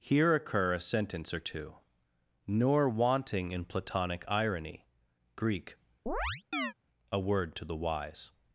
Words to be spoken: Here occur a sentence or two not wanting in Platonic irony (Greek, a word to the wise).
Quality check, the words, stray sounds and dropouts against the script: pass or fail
fail